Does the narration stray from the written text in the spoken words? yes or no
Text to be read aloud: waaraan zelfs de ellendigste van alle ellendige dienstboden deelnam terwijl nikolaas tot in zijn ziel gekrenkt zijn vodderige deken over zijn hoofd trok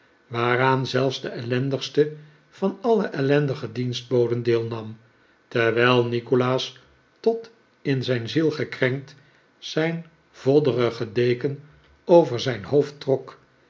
no